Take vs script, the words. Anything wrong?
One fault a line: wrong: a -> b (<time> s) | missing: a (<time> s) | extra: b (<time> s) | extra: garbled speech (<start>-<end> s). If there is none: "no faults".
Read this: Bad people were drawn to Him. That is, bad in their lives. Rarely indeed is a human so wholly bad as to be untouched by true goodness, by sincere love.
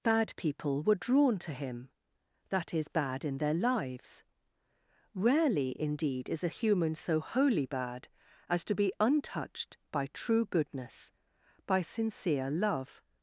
no faults